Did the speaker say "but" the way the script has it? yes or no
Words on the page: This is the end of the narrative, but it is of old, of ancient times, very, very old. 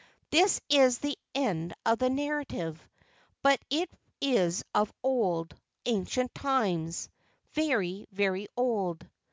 yes